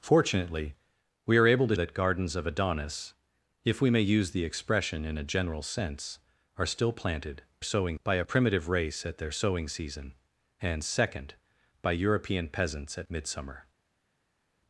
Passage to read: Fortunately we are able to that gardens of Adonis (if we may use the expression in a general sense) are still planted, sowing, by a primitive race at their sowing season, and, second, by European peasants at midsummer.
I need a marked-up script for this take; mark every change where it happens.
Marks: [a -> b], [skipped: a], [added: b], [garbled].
Fortunately we are able to that gardens of Adonis (if we may use the expression in a general sense) are still planted, sowing, by a primitive race at their sowing season, and, second, by European peasants at midsummer.